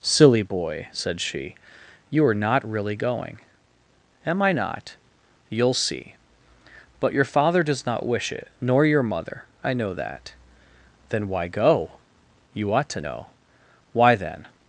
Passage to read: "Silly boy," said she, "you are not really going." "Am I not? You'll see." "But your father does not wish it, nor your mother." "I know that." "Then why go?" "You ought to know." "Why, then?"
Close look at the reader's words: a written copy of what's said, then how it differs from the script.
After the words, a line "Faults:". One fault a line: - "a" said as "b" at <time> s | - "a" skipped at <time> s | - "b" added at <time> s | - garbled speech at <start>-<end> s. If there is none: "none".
"Silly boy," said she, "you are not really going." "Am I not? You'll see." "But your father does not wish it, nor your mother." "I know that." "Then why go?" "You ought to know." "Why, then?"
Faults:
none